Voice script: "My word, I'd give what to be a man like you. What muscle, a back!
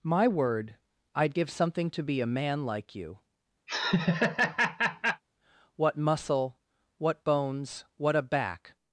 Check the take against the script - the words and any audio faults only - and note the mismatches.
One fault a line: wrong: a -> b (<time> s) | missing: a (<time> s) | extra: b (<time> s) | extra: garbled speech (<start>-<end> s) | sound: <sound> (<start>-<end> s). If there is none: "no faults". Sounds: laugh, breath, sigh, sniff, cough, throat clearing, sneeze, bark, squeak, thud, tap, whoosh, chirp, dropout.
wrong: what -> something (1.5 s)
sound: laugh (3.7-5.2 s)
extra: what bones what (7.0 s)